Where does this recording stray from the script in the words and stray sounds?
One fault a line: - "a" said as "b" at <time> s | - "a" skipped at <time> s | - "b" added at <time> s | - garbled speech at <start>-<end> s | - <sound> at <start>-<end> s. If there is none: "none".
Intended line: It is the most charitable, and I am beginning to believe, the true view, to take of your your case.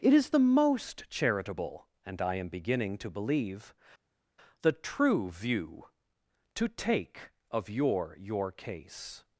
none